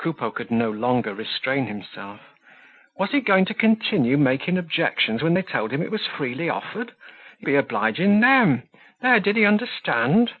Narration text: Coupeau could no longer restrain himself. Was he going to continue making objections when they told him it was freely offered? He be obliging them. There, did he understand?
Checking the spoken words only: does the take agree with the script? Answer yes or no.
yes